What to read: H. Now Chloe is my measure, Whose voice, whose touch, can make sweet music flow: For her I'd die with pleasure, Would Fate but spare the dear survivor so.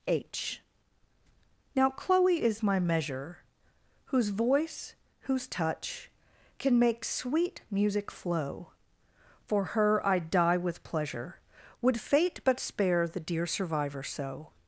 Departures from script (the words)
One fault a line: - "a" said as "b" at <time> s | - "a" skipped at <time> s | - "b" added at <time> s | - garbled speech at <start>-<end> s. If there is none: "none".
none